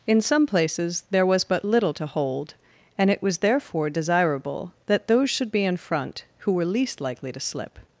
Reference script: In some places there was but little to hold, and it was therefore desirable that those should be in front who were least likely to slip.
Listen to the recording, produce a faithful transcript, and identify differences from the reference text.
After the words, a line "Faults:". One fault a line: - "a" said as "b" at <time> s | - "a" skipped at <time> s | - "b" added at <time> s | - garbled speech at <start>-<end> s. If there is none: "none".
In some places there was but little to hold, and it was therefore desirable that those should be in front who were least likely to slip.
Faults:
none